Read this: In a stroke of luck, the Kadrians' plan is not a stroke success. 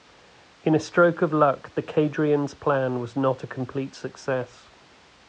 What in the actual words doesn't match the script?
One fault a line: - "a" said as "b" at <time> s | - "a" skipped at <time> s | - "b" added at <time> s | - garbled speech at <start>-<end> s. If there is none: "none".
- "is" said as "was" at 3.0 s
- "stroke" said as "complete" at 3.5 s